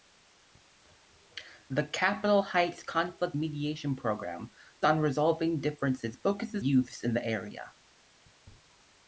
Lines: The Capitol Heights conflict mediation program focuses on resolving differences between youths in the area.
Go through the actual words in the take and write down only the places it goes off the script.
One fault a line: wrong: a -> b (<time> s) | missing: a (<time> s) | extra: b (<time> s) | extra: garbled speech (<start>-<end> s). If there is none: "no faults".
missing: focuses (4.5 s)
wrong: between -> focuses (6.2 s)